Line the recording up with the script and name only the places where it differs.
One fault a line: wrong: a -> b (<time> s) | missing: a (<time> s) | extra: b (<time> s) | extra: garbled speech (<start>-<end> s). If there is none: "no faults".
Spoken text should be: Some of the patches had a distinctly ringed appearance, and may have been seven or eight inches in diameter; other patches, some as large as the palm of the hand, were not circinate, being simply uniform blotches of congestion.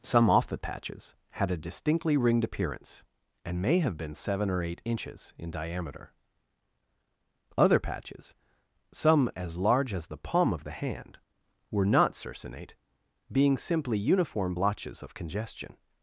wrong: of -> off (0.3 s)